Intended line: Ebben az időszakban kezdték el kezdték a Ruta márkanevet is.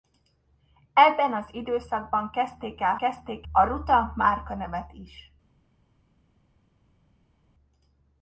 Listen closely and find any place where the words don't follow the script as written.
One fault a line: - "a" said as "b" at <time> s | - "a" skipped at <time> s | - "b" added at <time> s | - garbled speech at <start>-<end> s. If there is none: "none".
none